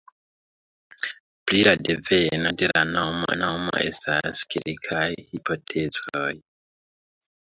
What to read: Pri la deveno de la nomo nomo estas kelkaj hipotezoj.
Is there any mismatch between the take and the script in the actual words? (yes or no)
no